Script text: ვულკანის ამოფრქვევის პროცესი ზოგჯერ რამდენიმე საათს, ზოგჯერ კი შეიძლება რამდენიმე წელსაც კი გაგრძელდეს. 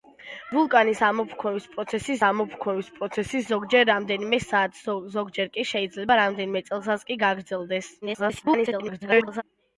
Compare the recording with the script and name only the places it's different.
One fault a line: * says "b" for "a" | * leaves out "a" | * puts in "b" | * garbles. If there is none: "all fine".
* puts in "ამოფრქვევის პროცესი"
* garbles